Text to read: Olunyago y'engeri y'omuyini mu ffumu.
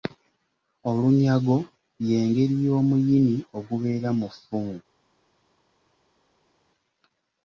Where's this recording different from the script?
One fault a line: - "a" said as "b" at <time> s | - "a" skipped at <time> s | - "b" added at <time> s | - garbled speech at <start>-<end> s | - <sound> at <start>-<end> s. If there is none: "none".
- "ogubeera" added at 3.6 s